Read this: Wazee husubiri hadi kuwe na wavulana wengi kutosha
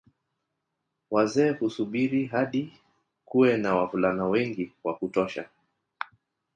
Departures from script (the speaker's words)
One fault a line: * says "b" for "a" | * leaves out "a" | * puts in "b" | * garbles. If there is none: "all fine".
* puts in "wa"